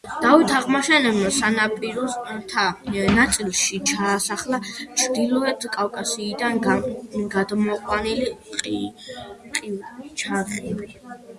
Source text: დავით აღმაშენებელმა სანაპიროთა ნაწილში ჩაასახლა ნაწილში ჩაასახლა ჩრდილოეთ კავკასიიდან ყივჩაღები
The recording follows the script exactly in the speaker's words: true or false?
false